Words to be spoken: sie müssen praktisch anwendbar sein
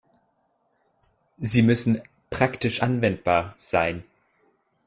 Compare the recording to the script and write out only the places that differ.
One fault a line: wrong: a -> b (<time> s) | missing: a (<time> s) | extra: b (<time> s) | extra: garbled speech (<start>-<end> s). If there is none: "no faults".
no faults